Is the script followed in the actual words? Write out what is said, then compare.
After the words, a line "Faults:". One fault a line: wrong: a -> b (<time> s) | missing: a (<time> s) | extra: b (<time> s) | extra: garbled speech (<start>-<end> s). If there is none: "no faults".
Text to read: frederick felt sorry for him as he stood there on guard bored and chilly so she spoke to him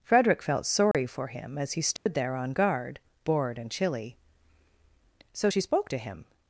frederick felt sorry for him as he stood there on guard bored and chilly so she spoke to him
Faults:
no faults